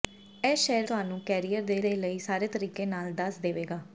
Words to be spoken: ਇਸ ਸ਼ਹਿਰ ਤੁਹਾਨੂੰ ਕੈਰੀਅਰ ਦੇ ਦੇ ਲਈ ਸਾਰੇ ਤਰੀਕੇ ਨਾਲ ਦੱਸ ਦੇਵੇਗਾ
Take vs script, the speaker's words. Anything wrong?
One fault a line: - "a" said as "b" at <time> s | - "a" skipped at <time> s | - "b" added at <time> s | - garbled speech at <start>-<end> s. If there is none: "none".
none